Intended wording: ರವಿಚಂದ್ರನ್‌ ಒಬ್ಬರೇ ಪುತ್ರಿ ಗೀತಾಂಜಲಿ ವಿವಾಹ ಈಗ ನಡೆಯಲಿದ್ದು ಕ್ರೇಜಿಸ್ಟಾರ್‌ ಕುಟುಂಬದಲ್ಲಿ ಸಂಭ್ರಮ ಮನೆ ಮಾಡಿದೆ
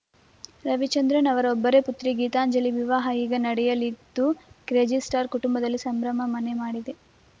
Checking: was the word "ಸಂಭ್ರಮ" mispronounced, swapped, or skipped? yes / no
no